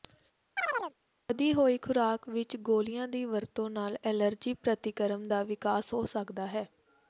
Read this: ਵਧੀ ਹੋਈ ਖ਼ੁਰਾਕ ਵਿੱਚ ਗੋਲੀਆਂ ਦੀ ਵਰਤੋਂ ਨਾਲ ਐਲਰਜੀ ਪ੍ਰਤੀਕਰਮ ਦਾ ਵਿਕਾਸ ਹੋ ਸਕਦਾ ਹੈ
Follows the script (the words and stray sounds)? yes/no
no